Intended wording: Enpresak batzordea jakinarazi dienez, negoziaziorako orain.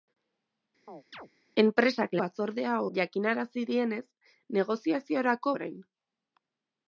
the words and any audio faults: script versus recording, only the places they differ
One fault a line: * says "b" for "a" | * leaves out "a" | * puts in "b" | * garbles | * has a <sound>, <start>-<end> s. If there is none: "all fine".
* has a chirp, 0.9-1.3 s